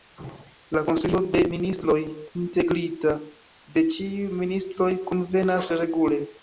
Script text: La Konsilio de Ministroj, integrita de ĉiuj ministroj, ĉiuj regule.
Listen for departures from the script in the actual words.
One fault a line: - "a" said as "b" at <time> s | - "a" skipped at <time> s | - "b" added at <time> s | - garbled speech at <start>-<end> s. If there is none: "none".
- "ĉiuj" said as "kunvenas" at 5.1 s